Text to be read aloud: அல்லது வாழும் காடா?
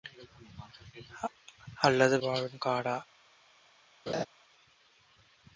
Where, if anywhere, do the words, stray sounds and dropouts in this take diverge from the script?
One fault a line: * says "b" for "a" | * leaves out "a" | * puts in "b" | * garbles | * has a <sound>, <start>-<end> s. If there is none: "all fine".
* has a laugh, 4.1-4.3 s